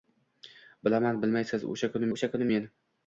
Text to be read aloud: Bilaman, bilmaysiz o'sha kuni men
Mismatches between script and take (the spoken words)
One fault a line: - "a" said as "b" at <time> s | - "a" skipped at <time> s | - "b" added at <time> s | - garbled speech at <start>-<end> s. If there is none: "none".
- "o'sha kuni" added at 2.2 s